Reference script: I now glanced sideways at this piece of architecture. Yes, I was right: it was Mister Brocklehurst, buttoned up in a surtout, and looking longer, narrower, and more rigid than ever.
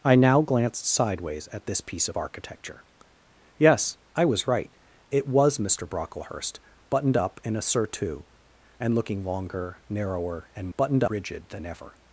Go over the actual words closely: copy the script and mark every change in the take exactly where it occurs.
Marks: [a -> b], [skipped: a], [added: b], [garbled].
I now glanced sideways at this piece of architecture. Yes, I was right: it was Mister Brocklehurst, buttoned up in a surtout, and looking longer, narrower, and [more -> buttoned] rigid than ever.